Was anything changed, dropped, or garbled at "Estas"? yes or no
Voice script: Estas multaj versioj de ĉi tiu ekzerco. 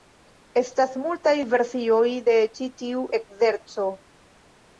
no